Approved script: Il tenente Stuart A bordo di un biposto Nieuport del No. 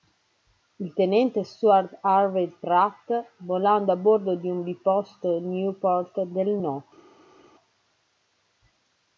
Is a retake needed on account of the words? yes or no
yes